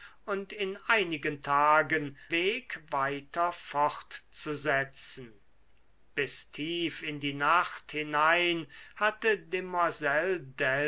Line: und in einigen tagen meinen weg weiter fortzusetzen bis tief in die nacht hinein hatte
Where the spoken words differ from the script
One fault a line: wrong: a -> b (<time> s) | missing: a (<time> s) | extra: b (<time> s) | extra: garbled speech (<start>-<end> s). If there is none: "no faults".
missing: meinen (2.2 s)